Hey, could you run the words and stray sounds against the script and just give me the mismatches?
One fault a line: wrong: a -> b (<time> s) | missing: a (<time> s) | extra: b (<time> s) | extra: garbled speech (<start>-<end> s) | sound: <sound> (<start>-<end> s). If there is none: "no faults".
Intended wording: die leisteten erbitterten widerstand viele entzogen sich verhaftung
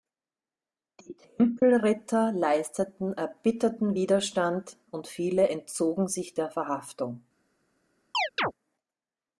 extra: tempelritter (1.1 s)
extra: und (4.9 s)
extra: der (6.3 s)
sound: chirp (8.1-8.5 s)